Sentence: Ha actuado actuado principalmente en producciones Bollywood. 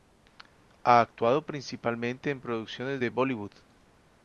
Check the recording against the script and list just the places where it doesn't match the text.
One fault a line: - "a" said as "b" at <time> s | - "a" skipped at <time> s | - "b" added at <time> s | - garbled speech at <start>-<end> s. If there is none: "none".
- "actuado" skipped at 1.4 s
- "de" added at 3.0 s